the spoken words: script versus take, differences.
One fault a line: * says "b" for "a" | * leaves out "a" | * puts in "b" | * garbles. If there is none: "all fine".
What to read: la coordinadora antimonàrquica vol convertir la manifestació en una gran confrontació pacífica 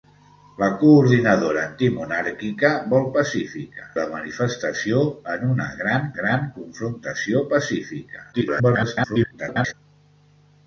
* says "pacífica" for "convertir"
* puts in "gran"
* garbles